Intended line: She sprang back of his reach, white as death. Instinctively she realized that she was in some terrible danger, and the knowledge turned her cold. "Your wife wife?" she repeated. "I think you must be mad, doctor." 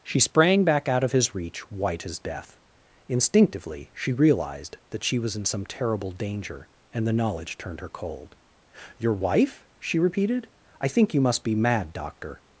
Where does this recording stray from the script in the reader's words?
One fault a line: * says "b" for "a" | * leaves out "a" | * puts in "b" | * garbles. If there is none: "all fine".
* puts in "out"
* leaves out "wife"